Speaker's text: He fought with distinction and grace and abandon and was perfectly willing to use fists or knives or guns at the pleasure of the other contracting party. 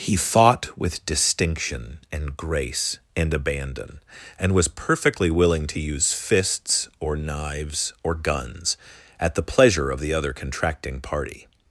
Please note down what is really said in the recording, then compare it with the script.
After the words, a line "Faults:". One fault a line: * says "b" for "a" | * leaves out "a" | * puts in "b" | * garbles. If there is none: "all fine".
He fought with distinction and grace and abandon and was perfectly willing to use fists or knives or guns at the pleasure of the other contracting party.
Faults:
all fine